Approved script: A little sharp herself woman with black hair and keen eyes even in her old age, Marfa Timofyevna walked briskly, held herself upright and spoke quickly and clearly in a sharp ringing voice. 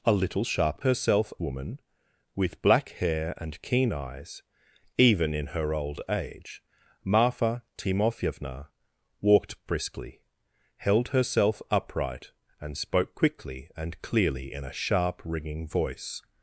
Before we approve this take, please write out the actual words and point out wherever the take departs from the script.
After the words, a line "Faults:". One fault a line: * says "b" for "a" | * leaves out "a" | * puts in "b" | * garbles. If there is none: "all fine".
A little sharp herself woman with black hair and keen eyes even in her old age, Marfa Timofyevna walked briskly, held herself upright and spoke quickly and clearly in a sharp ringing voice.
Faults:
all fine